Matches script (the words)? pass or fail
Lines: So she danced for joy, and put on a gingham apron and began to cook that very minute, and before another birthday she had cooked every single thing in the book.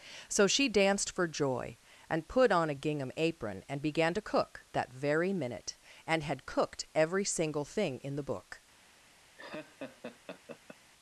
fail